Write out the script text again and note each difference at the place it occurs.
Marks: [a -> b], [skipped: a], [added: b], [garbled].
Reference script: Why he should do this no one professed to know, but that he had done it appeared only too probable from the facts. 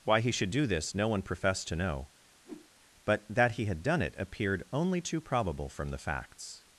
Why he should do this no one professed to know, but that he had done it appeared only too probable from the facts.